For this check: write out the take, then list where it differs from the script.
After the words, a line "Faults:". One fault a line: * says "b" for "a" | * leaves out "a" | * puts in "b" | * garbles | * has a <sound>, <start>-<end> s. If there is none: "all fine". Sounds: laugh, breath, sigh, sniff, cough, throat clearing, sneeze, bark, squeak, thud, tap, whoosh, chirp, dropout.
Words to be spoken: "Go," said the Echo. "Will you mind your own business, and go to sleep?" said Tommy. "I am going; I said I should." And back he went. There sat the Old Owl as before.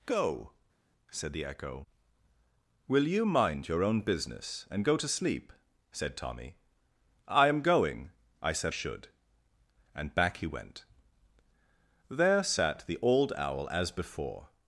"Go," said the Echo. "Will you mind your own business, and go to sleep?" said Tommy. "I am going; I said should." And back he went. There sat the Old Owl as before.
Faults:
* leaves out "I"